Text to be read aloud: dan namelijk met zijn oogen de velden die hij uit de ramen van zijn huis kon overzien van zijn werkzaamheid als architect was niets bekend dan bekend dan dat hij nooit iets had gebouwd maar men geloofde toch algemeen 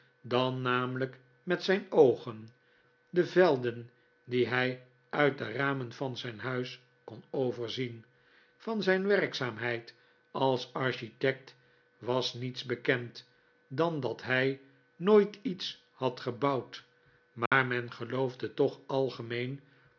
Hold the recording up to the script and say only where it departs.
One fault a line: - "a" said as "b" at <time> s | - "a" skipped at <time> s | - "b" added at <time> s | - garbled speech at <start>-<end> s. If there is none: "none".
- "bekend dan" skipped at 14.0 s